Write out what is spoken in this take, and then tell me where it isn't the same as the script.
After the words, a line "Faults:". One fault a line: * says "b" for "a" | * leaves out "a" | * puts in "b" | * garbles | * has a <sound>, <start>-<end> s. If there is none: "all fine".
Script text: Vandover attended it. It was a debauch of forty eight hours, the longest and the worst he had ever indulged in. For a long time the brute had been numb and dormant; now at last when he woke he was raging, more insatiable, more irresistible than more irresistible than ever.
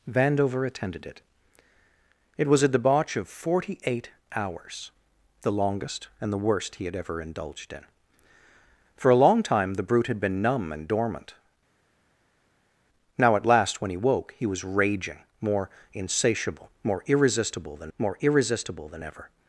Vandover attended it. It was a debauch of forty eight hours, the longest and the worst he had ever indulged in. For a long time the brute had been numb and dormant; now at last when he woke he was raging, more insatiable, more irresistible than more irresistible than ever.
Faults:
all fine